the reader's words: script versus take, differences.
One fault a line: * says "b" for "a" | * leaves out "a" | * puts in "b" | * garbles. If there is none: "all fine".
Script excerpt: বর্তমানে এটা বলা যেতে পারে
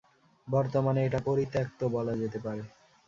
* puts in "পরিত্যক্ত"